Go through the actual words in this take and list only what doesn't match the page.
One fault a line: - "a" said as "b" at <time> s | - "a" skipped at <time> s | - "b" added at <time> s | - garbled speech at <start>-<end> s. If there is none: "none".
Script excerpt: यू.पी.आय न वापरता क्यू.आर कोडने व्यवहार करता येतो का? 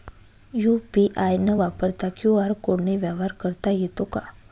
none